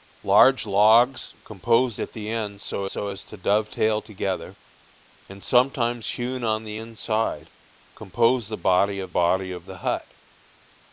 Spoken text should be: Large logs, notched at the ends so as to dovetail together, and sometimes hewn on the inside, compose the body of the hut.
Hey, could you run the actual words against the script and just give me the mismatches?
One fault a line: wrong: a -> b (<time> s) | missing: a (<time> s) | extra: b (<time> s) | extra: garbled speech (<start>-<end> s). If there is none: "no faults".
wrong: notched -> compose (1.4 s)
extra: so (2.9 s)
extra: body of (9.1 s)